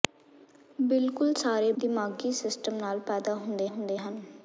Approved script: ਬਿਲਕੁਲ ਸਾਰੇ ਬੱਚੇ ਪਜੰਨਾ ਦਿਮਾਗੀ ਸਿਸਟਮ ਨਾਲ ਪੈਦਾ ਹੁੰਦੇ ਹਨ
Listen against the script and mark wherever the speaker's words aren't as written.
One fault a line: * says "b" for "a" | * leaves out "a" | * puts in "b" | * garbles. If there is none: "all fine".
* leaves out "ਬੱਚੇ ਪਜੰਨਾ"
* puts in "ਹੁੰਦੇ"